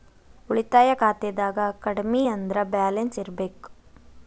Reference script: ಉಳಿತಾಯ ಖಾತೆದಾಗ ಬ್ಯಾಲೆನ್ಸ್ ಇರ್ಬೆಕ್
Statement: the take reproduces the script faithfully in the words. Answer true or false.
false